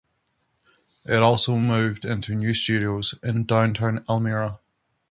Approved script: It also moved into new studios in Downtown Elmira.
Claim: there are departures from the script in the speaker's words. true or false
false